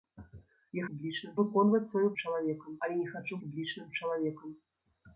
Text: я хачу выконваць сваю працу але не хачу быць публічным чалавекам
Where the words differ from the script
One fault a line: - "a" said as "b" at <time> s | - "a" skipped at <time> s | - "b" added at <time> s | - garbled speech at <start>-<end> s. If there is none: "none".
- "хачу" said as "публічным" at 0.9 s
- "працу" said as "чалавекам" at 2.2 s
- "быць" skipped at 3.3 s